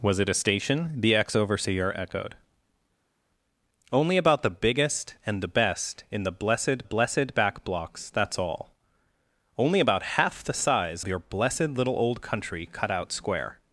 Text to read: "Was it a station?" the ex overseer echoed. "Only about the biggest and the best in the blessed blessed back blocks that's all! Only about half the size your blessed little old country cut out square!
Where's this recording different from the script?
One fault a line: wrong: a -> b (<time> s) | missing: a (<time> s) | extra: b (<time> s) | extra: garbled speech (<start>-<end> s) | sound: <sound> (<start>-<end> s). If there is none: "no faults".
no faults